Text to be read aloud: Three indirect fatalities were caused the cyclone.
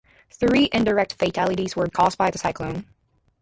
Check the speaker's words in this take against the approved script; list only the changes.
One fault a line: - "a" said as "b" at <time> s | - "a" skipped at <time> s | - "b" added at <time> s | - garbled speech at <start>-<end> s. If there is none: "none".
- "by" added at 2.2 s